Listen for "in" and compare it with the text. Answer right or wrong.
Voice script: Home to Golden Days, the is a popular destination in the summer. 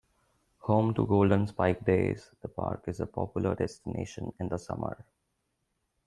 right